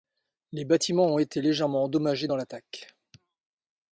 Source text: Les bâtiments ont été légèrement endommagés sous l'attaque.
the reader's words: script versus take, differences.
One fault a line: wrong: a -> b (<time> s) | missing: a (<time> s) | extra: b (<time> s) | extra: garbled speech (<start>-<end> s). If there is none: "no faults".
wrong: sous -> dans (2.2 s)